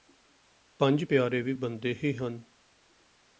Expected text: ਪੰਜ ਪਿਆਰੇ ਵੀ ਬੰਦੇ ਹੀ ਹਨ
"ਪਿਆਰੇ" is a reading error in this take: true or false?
false